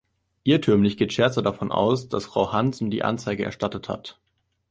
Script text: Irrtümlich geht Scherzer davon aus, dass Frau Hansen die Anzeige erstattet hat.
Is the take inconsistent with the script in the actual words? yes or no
no